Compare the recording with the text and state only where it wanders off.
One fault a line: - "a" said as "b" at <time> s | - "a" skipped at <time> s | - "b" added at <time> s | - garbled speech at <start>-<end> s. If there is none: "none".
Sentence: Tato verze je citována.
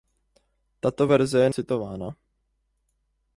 none